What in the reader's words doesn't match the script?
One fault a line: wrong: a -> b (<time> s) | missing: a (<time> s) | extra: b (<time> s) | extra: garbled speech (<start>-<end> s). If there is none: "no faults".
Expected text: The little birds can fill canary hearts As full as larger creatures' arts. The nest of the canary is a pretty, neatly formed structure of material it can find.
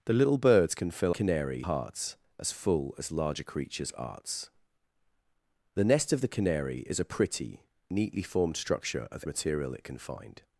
no faults